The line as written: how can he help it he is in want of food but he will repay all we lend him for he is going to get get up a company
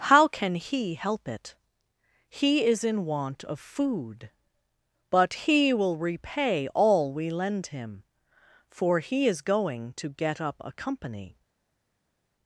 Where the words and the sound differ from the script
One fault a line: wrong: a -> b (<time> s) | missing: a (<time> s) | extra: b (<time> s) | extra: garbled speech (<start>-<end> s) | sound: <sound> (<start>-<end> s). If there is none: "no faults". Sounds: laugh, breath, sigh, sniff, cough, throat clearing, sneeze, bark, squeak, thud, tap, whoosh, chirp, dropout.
missing: get (10.4 s)